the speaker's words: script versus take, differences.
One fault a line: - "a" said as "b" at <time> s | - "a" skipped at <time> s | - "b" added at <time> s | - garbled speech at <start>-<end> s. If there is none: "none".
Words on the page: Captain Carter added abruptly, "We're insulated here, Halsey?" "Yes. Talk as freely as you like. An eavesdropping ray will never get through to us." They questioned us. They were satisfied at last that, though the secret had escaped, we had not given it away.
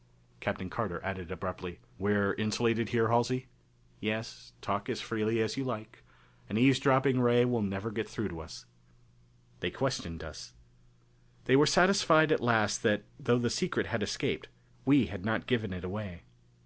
none